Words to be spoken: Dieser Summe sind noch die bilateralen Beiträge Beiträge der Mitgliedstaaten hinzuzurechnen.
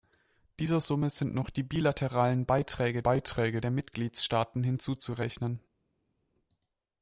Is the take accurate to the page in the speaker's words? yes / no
yes